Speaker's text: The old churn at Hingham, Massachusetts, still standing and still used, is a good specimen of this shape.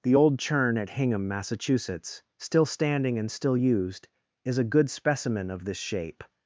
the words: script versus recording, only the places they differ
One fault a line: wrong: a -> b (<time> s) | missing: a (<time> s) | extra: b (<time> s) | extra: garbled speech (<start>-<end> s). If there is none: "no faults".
no faults